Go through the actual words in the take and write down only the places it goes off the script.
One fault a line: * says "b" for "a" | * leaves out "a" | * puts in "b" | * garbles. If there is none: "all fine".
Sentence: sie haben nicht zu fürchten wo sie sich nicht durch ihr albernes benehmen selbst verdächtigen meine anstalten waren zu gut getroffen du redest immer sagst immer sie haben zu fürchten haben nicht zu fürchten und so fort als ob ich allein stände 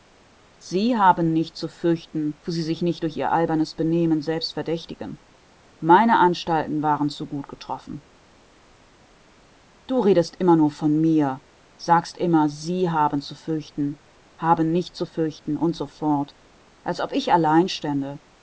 * puts in "nur von mir"